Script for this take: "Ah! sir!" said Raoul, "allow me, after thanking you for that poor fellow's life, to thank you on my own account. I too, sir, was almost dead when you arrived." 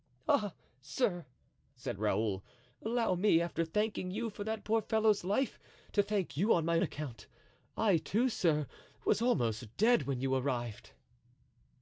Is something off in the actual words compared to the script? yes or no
yes